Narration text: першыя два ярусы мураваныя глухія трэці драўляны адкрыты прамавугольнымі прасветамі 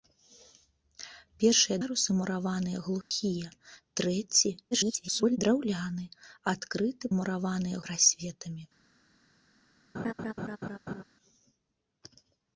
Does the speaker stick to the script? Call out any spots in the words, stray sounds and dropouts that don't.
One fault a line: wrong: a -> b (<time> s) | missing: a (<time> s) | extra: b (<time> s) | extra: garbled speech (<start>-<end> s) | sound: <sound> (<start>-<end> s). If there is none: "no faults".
missing: два (1.8 s)
sound: dropout (3.0-3.1 s)
extra: garbled speech (4.7-5.4 s)
wrong: прамавугольнымі -> мураваныя (7.2 s)
sound: laugh (9.9-11.0 s)